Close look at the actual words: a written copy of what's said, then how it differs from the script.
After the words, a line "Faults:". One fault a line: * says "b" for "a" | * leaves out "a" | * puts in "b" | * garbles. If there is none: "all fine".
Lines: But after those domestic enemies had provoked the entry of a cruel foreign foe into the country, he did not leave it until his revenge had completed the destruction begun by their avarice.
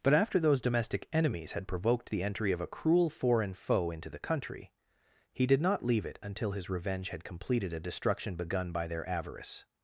But after those domestic enemies had provoked the entry of a cruel foreign foe into the country, he did not leave it until his revenge had completed a destruction begun by their avarice.
Faults:
* says "a" for "the"